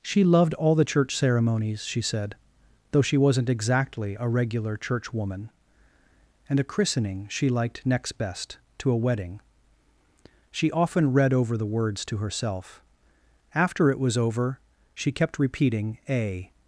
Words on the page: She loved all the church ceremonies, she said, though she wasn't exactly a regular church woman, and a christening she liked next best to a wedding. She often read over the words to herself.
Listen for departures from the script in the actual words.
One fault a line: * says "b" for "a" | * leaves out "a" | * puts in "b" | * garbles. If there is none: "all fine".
* puts in "After it was over she kept repeating a"